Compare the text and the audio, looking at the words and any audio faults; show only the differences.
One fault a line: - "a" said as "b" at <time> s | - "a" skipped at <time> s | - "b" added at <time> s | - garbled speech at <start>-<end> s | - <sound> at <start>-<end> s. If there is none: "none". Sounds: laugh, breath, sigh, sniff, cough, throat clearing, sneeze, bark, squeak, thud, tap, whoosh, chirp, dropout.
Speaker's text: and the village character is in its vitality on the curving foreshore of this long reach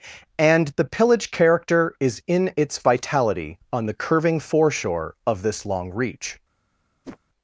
- "village" said as "pillage" at 0.8 s
- whoosh at 7.0-7.2 s